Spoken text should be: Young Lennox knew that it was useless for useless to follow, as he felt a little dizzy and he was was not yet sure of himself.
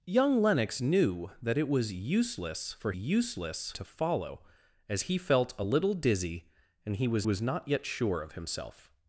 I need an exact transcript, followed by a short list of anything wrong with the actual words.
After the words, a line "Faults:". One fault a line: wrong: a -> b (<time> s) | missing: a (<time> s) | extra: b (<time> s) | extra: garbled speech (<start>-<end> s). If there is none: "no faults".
Young Lennox knew that it was useless for useless to follow, as he felt a little dizzy and he was was not yet sure of himself.
Faults:
no faults